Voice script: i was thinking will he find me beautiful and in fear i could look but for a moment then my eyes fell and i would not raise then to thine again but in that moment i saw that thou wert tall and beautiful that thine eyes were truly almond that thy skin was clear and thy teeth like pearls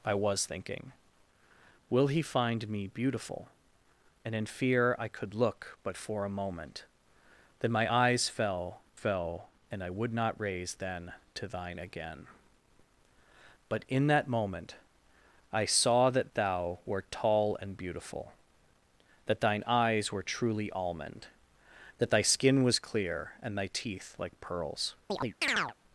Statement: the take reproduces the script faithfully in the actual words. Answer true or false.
false